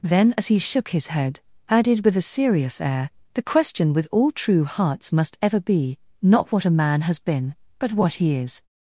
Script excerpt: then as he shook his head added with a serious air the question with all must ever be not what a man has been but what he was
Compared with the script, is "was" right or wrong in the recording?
wrong